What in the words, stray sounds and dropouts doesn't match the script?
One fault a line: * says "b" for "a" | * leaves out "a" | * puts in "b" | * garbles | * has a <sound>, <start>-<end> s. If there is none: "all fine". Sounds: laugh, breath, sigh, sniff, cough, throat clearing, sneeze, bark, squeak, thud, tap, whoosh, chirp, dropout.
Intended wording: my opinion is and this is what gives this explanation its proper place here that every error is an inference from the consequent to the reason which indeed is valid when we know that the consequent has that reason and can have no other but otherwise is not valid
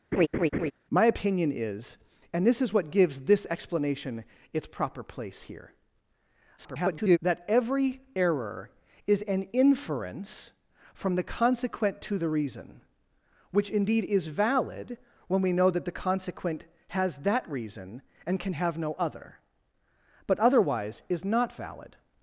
* has a laugh, 0.1-0.7 s
* garbles